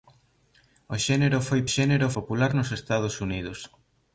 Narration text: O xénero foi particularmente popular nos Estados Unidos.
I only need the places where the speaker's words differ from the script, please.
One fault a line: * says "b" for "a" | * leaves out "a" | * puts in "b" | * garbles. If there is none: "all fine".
* says "xénero" for "particularmente"